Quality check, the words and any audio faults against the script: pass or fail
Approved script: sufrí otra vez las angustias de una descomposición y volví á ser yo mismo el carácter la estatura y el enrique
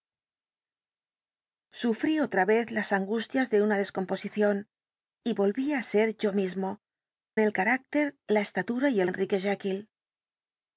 pass